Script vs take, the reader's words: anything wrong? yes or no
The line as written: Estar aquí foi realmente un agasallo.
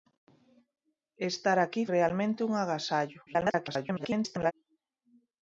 yes